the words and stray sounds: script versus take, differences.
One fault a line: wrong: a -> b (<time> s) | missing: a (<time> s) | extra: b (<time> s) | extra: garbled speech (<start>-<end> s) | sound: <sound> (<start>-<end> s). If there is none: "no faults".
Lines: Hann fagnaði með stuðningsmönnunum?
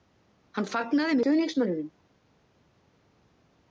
missing: með (1.2 s)